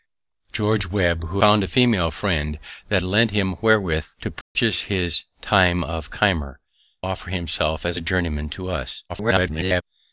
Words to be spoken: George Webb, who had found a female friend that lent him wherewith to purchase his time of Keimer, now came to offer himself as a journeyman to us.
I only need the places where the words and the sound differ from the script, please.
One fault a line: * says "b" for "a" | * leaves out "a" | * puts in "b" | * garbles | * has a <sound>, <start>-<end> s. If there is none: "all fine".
* leaves out "had"
* has a dropout, 4.4-4.6 s
* leaves out "now came to"
* garbles